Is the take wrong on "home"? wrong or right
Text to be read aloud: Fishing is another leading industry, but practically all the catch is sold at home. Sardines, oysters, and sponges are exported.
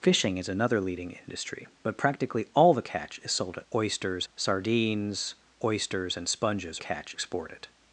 wrong